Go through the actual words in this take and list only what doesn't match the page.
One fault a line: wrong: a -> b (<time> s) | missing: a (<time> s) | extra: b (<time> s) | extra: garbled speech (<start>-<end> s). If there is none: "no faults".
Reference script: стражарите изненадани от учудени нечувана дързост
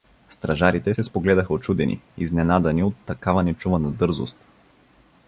extra: се спогледаха учудени (0.9 s)
wrong: учудени -> такава (3.1 s)